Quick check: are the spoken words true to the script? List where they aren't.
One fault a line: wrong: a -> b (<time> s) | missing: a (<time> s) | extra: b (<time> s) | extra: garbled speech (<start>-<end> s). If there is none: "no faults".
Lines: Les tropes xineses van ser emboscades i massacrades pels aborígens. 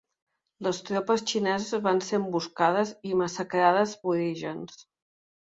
missing: pels (4.0 s)